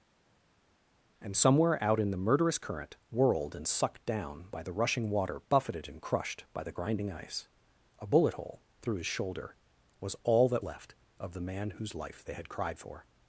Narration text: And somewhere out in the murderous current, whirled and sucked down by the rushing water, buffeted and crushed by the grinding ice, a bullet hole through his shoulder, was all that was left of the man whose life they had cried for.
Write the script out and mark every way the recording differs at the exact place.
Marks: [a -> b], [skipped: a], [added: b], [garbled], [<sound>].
And somewhere out in the murderous current, whirled and sucked down by the rushing water, buffeted and crushed by the grinding ice, a bullet hole through his shoulder, was all that [skipped: was] left of the man whose life they had cried for.